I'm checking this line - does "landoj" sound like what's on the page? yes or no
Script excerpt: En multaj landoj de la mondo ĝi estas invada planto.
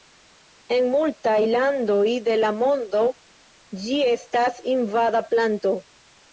yes